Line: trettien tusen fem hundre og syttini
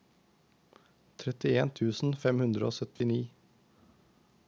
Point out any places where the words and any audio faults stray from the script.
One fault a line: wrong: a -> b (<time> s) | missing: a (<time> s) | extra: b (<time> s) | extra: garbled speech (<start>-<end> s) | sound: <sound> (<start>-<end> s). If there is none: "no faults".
sound: dropout (3.0-3.0 s)